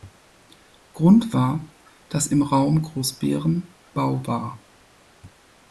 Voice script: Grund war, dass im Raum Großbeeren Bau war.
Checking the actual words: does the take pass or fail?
pass